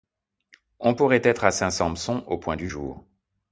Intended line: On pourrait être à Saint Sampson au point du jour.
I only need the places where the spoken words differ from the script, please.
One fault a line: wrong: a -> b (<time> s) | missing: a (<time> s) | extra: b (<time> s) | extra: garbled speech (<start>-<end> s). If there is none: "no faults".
no faults